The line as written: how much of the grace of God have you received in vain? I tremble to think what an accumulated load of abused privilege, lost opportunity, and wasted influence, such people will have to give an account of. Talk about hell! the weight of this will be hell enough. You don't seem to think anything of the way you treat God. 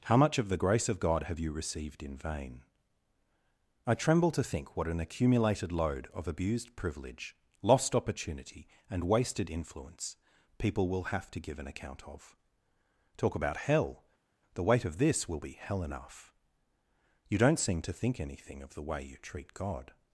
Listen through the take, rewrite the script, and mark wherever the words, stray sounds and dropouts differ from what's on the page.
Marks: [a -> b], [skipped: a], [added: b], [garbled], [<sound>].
how much of the grace of God have you received in vain? I tremble to think what an accumulated load of abused privilege, lost opportunity, and wasted influence, [skipped: such] people will have to give an account of. Talk about hell! the weight of this will be hell enough. You don't seem to think anything of the way you treat God.